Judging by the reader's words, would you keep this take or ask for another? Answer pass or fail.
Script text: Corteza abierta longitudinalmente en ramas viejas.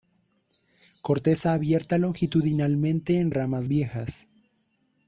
pass